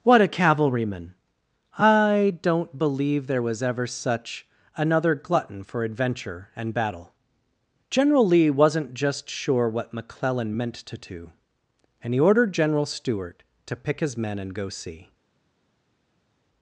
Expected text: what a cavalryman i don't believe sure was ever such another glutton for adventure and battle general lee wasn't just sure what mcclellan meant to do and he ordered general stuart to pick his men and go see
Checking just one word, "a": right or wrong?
right